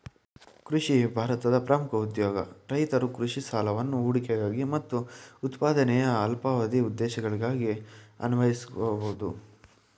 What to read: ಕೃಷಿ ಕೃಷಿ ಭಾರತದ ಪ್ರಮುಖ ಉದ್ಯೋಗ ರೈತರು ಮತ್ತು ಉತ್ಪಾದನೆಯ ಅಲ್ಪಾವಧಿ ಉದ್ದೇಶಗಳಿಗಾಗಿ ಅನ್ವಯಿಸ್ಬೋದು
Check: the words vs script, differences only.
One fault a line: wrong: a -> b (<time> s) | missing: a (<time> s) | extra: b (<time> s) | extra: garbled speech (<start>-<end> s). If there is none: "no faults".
missing: ಕೃಷಿ (0.9 s)
extra: ಕೃಷಿ ಸಾಲವನ್ನು ಹೂಡಿಕೆಗಾಗಿ (3.2 s)